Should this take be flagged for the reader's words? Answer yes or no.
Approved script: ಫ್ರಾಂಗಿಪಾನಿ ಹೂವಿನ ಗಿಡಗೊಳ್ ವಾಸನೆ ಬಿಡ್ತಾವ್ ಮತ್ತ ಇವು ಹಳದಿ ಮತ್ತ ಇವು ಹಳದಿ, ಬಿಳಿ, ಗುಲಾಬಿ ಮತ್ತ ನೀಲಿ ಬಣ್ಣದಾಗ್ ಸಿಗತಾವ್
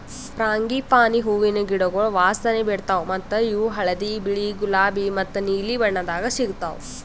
yes